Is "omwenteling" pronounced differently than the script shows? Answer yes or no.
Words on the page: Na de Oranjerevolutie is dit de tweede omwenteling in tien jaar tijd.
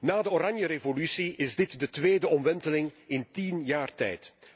no